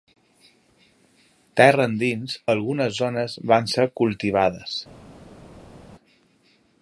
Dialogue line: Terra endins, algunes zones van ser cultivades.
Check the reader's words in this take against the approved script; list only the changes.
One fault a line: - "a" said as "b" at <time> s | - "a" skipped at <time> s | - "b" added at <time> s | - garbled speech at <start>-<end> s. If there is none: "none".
none